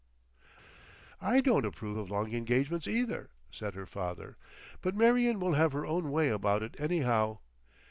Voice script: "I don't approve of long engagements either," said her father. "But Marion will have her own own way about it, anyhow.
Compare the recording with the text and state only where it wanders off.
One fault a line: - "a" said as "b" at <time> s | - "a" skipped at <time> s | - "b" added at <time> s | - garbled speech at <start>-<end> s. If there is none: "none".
- "own" skipped at 6.1 s